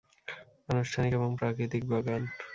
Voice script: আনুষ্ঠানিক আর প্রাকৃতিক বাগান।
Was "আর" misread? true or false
true